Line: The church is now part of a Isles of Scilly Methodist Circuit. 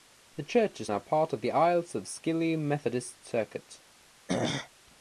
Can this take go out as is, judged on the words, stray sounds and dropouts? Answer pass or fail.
fail